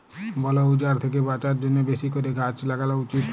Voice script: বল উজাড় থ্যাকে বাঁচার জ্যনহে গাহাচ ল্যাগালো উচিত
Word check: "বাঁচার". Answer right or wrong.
right